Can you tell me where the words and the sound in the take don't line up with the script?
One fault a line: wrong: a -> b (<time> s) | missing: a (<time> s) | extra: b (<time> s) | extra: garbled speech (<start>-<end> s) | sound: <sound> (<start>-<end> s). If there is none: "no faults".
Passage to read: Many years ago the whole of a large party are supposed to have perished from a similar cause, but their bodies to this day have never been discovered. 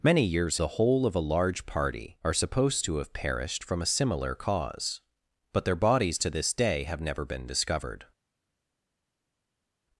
missing: ago (0.6 s)